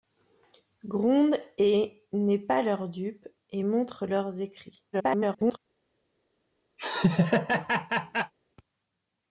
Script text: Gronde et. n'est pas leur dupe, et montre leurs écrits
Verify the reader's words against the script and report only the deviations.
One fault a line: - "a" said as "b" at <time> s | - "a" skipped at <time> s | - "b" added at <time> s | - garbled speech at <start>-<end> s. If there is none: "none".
- garbled speech at 4.9-5.6 s